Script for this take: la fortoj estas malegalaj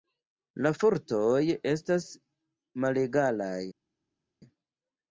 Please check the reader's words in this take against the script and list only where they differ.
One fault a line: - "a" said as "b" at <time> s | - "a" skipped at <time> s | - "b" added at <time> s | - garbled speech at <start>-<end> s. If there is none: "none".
none